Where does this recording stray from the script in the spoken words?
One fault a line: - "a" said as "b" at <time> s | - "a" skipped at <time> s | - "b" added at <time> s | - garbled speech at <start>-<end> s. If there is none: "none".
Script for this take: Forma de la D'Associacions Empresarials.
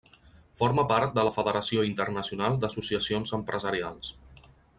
- "part" added at 0.9 s
- "Federació Internacional" added at 1.4 s